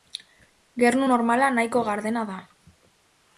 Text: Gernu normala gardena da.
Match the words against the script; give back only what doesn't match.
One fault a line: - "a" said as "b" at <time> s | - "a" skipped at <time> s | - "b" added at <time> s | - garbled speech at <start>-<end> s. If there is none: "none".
- "nahiko" added at 1.6 s